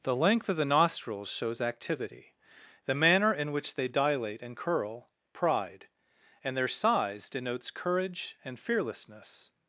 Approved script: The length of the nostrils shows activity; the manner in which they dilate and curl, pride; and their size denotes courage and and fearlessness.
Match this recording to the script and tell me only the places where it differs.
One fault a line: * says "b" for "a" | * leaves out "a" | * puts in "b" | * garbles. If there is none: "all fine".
* leaves out "and"